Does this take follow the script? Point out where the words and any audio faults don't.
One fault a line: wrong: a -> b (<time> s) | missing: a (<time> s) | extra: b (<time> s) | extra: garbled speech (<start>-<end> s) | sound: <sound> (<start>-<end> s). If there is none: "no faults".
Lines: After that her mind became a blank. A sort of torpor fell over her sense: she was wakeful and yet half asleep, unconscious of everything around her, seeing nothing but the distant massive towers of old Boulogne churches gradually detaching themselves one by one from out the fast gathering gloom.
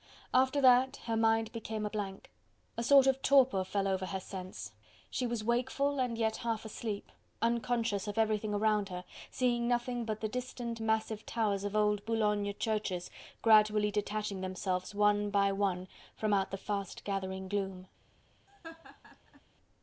sound: laugh (18.5-19.4 s)